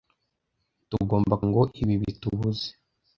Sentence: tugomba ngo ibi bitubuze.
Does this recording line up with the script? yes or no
yes